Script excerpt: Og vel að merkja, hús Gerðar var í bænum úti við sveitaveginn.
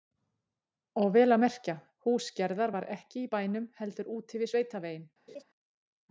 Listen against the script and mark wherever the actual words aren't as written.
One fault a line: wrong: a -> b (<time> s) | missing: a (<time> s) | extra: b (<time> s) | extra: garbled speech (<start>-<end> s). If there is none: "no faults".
extra: ekki (3.0 s)
extra: heldur (3.8 s)